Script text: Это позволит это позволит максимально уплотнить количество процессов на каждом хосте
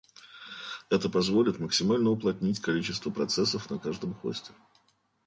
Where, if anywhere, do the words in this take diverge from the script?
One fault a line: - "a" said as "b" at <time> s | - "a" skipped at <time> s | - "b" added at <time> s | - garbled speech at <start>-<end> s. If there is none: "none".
- "это позволит" skipped at 1.6 s